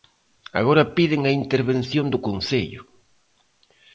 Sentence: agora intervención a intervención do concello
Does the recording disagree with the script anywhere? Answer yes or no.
yes